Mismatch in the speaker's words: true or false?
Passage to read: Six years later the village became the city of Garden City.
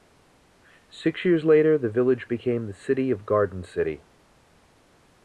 false